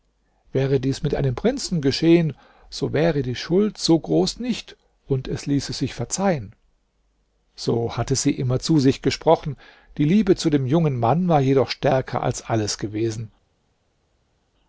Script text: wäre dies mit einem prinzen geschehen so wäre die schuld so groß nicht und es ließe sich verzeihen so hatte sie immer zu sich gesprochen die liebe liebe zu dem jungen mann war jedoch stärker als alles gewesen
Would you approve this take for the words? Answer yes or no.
no